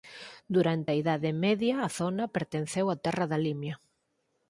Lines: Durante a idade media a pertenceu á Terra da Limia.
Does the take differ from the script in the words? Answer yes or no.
yes